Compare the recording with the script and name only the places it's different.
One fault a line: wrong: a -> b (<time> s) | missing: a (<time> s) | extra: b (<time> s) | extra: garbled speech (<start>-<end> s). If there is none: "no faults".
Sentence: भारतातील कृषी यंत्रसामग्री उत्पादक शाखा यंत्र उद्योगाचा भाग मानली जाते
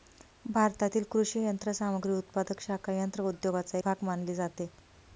no faults